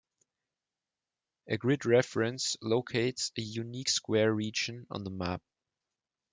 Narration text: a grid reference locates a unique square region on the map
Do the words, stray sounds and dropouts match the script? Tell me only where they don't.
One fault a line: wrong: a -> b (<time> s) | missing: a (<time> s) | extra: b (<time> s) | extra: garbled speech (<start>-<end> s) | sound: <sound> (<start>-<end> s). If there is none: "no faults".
no faults